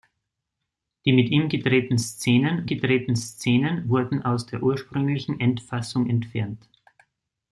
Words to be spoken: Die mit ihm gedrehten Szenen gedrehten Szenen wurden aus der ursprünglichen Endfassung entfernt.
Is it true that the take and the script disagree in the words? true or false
false